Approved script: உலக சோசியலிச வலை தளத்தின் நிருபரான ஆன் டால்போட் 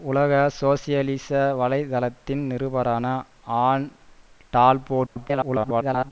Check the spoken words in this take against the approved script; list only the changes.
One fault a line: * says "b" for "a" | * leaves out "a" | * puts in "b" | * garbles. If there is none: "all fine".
* garbles